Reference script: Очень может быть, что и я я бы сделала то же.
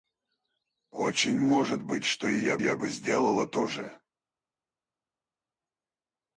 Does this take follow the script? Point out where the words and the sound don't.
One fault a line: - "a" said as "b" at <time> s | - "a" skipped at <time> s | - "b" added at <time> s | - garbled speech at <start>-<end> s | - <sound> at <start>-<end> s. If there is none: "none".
none